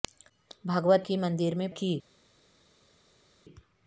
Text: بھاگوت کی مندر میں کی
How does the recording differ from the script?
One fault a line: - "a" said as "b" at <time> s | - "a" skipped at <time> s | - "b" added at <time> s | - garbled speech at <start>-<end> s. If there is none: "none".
none